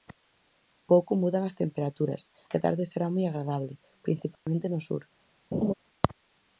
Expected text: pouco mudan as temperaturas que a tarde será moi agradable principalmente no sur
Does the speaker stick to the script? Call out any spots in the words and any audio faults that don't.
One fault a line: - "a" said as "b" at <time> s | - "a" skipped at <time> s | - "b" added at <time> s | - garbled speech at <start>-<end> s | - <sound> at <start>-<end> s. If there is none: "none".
- dropout at 4.3-4.5 s
- laugh at 5.5-5.7 s